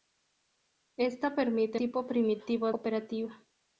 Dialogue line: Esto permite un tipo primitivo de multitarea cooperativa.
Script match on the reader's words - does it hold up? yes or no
no